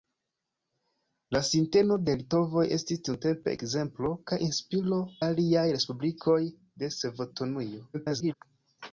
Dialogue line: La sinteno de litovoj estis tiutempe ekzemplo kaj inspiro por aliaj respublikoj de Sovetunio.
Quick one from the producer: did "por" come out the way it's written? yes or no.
no